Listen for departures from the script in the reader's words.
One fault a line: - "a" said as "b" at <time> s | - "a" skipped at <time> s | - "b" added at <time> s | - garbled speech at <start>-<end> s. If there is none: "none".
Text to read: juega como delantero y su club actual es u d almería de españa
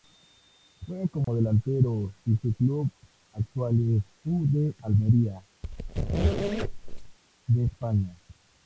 none